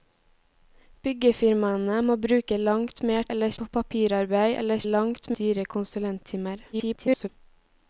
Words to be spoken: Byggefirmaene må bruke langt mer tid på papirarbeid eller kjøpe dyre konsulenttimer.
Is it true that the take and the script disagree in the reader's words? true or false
true